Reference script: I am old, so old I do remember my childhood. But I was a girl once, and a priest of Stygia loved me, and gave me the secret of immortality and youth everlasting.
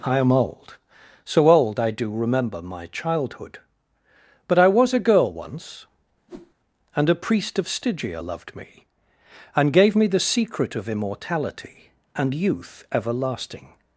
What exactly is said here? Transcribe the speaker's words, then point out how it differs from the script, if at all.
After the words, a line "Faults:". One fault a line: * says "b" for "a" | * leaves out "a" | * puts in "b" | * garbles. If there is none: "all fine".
I am old, so old I do remember my childhood. But I was a girl once, and a priest of Stygia loved me, and gave me the secret of immortality and youth everlasting.
Faults:
all fine